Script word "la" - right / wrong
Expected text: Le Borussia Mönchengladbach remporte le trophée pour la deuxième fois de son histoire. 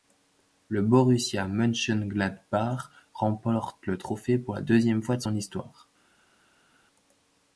right